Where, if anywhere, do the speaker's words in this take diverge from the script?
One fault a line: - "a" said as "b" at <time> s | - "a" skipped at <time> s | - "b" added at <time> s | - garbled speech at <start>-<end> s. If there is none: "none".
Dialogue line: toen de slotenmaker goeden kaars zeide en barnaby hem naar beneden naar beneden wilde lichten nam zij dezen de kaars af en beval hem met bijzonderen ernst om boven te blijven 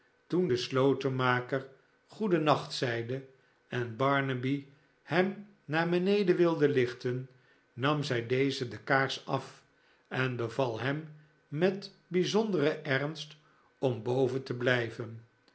- "kaars" said as "nacht" at 2.4 s
- "naar beneden" skipped at 6.4 s